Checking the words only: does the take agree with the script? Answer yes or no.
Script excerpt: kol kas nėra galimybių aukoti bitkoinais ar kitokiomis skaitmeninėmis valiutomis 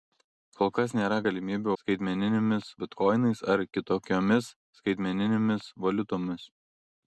no